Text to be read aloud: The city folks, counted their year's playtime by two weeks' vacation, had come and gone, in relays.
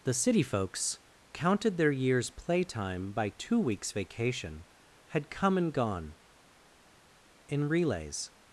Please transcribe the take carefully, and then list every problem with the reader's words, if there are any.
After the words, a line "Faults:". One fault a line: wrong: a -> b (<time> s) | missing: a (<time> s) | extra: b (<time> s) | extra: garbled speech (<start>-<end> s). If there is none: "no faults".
The city folks, counted their year's playtime by two weeks' vacation, had come and gone, in relays.
Faults:
no faults